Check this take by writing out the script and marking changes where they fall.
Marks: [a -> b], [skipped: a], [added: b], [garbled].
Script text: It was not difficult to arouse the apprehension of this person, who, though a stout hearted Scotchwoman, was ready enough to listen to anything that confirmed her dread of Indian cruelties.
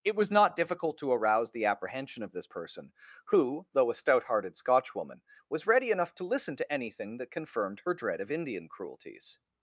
It was not difficult to arouse the apprehension of this person, who, though a stout hearted Scotchwoman, was ready enough to listen to anything that confirmed her dread of Indian cruelties.